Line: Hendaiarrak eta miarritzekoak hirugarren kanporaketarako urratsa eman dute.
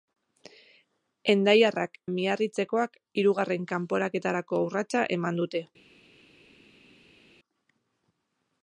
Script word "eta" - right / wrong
wrong